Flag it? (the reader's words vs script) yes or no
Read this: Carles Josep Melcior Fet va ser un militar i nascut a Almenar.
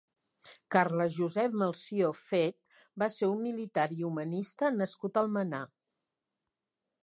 yes